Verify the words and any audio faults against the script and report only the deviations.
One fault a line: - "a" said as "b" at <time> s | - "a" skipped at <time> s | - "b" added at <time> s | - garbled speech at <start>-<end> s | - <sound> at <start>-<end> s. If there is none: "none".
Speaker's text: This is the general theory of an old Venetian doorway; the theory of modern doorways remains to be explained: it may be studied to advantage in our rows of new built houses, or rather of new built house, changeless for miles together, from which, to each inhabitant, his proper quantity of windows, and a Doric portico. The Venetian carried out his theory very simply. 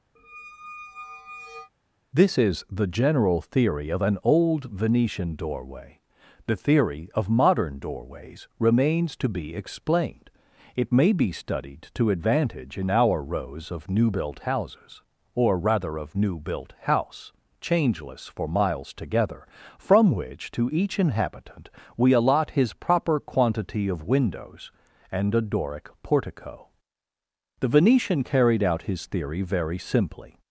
- squeak at 0.2-1.7 s
- "we allot" added at 22.0 s